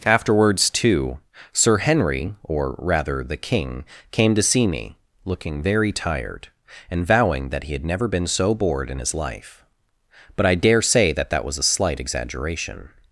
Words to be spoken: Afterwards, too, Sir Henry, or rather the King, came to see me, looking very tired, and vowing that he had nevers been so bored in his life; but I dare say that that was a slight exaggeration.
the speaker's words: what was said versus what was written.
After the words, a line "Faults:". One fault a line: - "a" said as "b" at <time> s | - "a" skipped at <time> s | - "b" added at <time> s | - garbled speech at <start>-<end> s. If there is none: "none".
Afterwards, too, Sir Henry, or rather the King, came to see me, looking very tired, and vowing that he had never been so bored in his life; but I dare say that that was a slight exaggeration.
Faults:
- "nevers" said as "never" at 7.8 s